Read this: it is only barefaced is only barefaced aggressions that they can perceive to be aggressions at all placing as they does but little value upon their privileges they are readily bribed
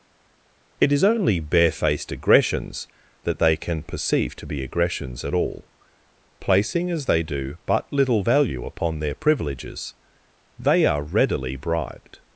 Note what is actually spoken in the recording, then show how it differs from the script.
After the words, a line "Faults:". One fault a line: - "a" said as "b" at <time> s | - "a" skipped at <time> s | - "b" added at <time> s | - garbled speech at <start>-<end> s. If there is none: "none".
it is only barefaced aggressions that they can perceive to be aggressions at all placing as they do but little value upon their privileges they are readily bribed
Faults:
- "is only barefaced" skipped at 2.1 s
- "does" said as "do" at 7.2 s